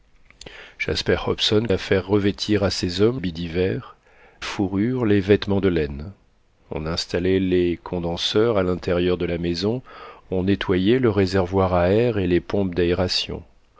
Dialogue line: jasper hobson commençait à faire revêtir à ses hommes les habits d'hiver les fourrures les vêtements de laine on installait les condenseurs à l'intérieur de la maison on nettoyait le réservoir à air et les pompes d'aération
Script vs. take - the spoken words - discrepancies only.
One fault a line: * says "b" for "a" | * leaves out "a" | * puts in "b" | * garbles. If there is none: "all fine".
* leaves out "commençait"
* leaves out "les"
* leaves out "les"